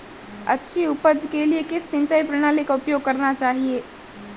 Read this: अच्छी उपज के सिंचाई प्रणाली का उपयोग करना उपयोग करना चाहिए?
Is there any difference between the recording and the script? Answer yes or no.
yes